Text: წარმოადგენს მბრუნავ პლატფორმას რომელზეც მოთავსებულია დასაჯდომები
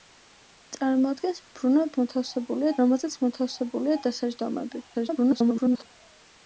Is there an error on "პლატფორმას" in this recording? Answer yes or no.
yes